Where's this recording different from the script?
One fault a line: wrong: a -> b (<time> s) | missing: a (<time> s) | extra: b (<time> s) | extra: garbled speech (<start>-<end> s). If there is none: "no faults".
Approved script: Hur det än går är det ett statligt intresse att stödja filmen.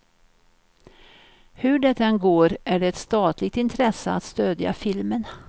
no faults